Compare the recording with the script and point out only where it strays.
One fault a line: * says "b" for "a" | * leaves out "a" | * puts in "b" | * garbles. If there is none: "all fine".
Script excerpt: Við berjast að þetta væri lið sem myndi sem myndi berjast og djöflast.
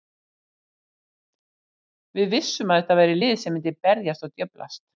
* says "vissum" for "berjast"
* leaves out "sem myndi"